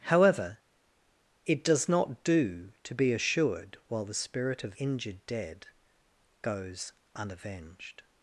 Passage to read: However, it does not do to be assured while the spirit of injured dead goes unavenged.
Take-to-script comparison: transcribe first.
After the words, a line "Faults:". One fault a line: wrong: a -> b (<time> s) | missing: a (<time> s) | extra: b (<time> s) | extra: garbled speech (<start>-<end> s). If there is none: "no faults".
However, it does not do to be assured while the spirit of injured dead goes unavenged.
Faults:
no faults